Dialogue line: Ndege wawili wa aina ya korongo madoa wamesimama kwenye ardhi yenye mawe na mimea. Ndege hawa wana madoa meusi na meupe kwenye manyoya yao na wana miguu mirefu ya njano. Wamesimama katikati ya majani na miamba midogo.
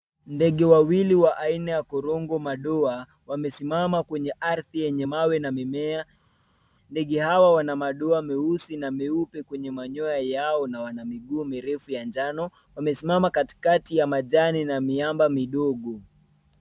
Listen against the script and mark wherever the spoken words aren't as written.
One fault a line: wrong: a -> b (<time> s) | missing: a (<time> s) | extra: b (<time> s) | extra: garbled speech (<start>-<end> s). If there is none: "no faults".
no faults